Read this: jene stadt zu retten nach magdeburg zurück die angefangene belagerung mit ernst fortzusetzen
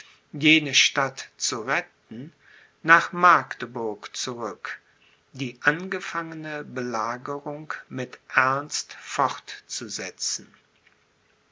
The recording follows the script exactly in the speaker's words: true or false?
true